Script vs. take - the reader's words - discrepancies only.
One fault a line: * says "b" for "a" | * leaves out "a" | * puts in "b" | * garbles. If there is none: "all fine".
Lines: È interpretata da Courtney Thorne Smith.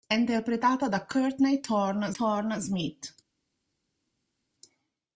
* puts in "Thorne"